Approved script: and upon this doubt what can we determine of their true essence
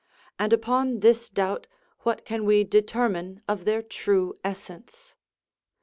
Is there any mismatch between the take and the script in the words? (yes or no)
no